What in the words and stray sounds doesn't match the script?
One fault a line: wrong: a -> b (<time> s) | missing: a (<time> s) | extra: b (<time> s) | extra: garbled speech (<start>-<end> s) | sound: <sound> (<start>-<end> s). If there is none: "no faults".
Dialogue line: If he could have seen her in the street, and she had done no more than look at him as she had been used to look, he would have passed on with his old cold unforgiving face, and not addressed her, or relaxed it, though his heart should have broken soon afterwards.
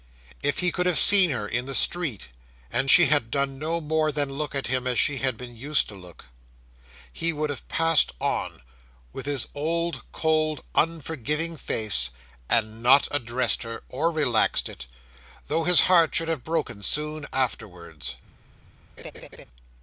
sound: laugh (19.0-19.4 s)